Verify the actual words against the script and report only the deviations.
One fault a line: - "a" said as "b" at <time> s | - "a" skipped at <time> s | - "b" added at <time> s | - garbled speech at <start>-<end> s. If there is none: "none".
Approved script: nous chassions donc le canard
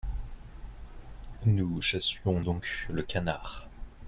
none